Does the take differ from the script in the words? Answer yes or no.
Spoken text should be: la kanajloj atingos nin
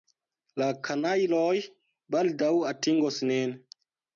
yes